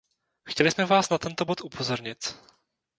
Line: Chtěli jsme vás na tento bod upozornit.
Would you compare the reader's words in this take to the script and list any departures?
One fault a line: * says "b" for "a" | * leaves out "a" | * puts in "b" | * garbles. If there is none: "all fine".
all fine